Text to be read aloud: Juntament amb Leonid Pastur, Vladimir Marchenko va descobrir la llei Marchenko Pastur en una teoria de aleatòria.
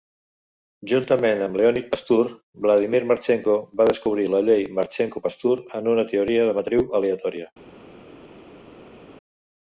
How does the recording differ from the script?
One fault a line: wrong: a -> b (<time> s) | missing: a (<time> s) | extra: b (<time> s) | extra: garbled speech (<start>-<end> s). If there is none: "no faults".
extra: matriu (6.6 s)